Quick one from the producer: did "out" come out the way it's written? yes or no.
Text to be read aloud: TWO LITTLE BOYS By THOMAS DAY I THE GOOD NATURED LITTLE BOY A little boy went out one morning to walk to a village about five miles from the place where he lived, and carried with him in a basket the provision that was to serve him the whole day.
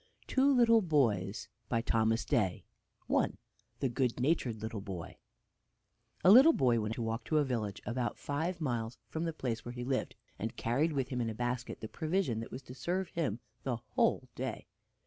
no